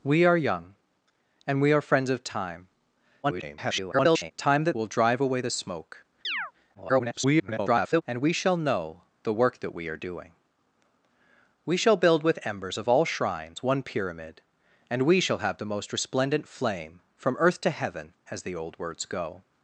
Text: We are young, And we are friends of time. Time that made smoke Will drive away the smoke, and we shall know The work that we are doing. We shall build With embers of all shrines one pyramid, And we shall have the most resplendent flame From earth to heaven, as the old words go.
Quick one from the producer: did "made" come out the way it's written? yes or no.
no